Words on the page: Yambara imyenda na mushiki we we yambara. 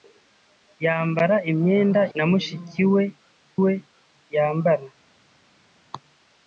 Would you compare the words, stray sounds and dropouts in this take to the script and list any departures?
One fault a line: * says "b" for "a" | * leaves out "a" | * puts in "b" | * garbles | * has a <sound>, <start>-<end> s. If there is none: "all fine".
all fine